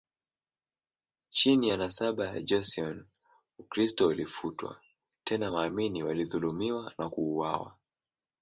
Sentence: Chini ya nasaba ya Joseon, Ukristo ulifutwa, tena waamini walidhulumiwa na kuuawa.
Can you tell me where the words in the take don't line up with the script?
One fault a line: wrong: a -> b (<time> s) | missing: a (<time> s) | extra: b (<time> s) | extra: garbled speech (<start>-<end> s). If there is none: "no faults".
no faults